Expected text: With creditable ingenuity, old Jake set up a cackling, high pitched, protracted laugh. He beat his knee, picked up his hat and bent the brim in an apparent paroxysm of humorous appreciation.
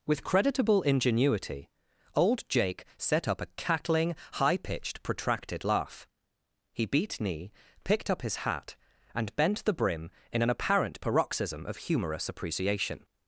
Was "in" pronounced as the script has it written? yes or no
yes